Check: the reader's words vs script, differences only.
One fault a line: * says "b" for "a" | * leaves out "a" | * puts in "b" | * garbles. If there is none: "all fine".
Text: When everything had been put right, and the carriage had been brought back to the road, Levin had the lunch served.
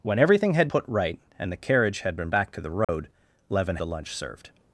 * leaves out "been"
* leaves out "brought"
* leaves out "had"